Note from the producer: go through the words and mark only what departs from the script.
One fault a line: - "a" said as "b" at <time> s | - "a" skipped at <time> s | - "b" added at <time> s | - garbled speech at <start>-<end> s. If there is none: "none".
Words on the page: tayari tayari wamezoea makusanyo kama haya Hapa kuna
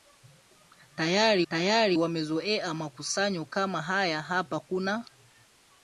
none